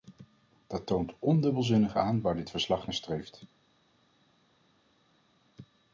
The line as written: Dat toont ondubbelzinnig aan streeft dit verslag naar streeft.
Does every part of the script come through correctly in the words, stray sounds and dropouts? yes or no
no